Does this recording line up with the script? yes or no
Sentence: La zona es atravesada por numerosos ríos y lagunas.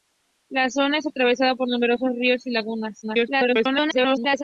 no